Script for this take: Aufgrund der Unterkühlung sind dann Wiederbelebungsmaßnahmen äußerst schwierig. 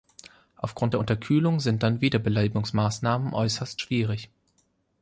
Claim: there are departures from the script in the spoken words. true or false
false